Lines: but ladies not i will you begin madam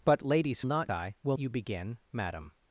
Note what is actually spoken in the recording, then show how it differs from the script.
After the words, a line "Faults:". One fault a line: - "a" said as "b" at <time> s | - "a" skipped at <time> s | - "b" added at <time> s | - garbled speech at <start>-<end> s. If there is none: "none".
but ladies not i will you begin madam
Faults:
none